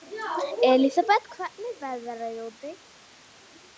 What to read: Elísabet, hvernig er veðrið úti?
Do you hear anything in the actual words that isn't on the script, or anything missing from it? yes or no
no